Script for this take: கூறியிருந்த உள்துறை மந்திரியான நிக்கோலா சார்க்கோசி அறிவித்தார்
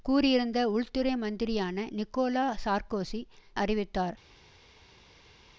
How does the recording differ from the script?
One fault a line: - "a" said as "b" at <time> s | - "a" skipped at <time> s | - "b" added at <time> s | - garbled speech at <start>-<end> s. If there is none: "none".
none